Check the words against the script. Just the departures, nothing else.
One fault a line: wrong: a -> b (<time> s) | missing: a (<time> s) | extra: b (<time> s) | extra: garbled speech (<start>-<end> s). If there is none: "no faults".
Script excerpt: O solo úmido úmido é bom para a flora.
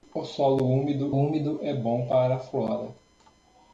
no faults